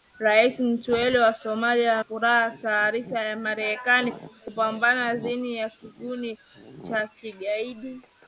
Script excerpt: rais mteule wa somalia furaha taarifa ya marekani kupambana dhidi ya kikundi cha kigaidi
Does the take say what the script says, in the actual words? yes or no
yes